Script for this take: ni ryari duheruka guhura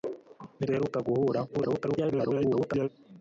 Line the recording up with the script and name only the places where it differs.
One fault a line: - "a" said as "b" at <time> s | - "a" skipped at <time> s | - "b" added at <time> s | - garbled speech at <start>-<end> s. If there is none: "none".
- "ryari" skipped at 0.7 s
- garbled speech at 1.5-2.9 s